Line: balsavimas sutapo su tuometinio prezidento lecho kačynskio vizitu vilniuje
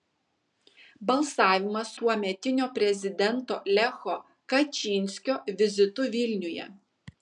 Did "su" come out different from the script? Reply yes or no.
yes